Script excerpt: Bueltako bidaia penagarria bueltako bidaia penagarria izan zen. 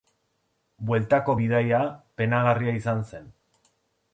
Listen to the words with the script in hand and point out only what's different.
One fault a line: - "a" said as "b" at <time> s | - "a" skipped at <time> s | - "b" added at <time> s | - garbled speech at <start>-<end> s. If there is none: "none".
- "bueltako bidaia penagarria" skipped at 2.8 s